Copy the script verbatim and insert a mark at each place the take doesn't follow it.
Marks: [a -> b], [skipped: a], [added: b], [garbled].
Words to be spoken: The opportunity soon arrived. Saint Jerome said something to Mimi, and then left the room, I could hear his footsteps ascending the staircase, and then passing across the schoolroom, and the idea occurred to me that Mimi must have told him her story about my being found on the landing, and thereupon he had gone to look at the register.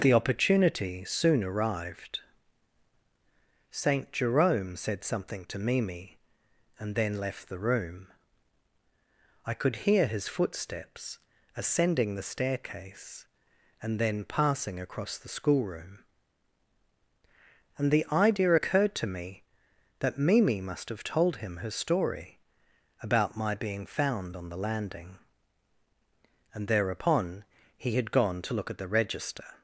The opportunity soon arrived. Saint Jerome said something to Mimi, and then left the room, I could hear his footsteps ascending the staircase, and then passing across the schoolroom, and the idea occurred to me that Mimi must have told him her story about my being found on the landing, and thereupon he had gone to look at the register.